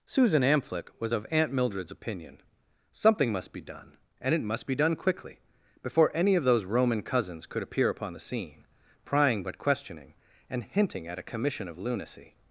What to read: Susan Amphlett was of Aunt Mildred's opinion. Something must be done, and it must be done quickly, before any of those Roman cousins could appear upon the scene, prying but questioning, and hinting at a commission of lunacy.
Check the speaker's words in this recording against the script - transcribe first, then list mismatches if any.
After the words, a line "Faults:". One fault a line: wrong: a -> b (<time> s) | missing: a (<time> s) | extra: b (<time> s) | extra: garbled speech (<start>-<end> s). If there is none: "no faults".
Susan Amphlett was of Aunt Mildred's opinion. Something must be done, and it must be done quickly, before any of those Roman cousins could appear upon the scene, prying but questioning, and hinting at a commission of lunacy.
Faults:
no faults